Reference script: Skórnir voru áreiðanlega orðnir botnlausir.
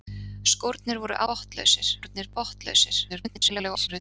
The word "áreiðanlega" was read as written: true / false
false